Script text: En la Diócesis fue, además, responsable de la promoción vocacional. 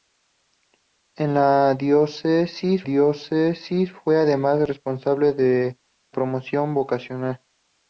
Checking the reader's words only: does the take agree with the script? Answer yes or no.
no